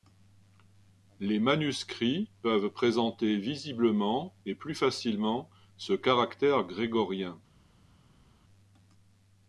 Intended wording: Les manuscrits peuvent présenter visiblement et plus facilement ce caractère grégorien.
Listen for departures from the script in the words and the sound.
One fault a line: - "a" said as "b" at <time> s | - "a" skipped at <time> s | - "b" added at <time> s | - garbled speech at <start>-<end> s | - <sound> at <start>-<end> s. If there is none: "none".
none